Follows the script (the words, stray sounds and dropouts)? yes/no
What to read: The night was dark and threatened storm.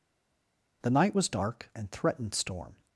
yes